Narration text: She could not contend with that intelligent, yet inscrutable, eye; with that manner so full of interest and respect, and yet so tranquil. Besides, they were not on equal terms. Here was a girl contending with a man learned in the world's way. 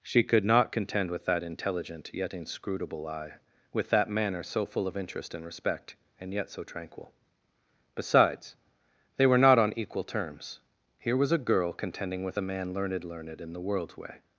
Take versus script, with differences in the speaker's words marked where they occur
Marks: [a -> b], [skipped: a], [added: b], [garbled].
She could not contend with that intelligent, yet inscrutable, eye; with that manner so full of interest and respect, and yet so tranquil. Besides, they were not on equal terms. Here was a girl contending with a man learned [added: learned] in the world's way.